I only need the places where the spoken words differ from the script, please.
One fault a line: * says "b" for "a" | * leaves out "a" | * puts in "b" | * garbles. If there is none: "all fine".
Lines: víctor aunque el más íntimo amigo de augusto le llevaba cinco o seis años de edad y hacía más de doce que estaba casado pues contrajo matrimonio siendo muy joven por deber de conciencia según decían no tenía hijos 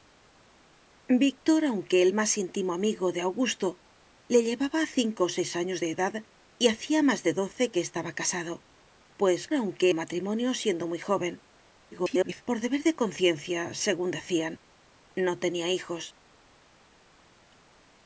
* says "aunque" for "contrajo"
* garbles